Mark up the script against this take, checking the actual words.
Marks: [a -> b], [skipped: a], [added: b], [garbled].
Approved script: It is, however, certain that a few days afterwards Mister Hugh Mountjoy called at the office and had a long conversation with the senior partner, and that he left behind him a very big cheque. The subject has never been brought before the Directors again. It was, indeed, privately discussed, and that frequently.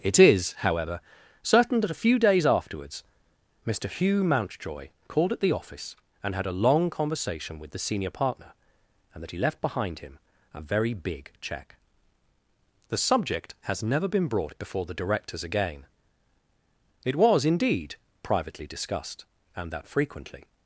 It is, however, certain that a few days afterwards Mister Hugh Mountjoy called at the office and had a long conversation with the senior partner, and that he left behind him a very big cheque. The subject has never been brought before the Directors again. It was, indeed, privately discussed, and that frequently.